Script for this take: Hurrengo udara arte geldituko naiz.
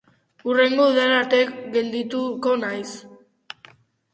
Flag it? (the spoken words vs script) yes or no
no